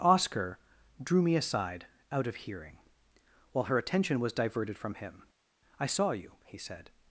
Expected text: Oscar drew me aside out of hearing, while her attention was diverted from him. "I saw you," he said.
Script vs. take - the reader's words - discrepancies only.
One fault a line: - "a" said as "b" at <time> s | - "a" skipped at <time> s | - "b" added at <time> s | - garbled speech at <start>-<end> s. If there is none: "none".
none